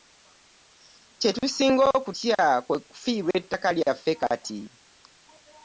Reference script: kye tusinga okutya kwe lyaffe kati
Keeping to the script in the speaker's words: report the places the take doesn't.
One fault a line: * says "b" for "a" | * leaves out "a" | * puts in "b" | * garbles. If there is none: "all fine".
* puts in "kufiirwa ettaka"